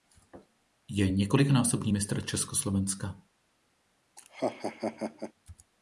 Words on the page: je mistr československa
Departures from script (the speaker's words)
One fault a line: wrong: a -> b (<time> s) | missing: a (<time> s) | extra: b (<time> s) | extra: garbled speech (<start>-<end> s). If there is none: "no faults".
extra: několikanásobný (1.1 s)